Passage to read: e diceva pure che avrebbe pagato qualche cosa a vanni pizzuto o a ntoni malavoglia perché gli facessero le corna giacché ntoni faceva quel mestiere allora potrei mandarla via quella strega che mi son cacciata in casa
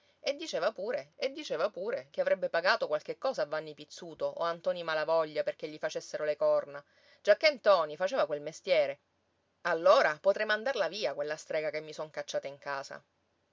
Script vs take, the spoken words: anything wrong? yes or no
yes